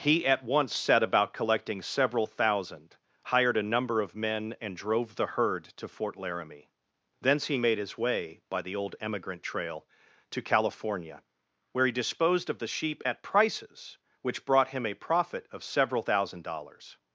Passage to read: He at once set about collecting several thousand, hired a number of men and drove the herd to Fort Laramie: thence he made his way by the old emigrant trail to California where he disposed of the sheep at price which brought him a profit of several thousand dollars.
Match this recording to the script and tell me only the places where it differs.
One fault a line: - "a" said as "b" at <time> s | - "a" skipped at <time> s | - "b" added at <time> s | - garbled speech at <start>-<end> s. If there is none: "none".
- "price" said as "prices" at 13.2 s